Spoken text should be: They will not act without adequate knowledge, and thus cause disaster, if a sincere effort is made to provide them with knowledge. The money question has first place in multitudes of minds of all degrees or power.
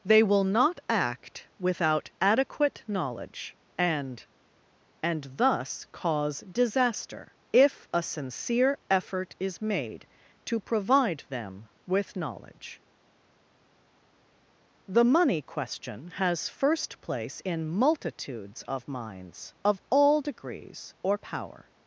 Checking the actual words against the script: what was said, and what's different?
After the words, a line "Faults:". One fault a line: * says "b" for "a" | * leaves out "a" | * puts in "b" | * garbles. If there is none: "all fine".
They will not act without adequate knowledge, and and thus cause disaster, if a sincere effort is made to provide them with knowledge. The money question has first place in multitudes of minds of all degrees or power.
Faults:
* puts in "and"